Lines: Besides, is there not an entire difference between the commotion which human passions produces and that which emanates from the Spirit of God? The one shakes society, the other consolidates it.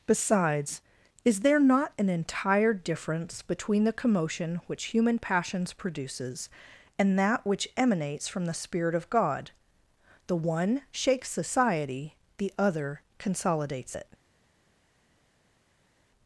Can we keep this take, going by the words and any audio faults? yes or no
yes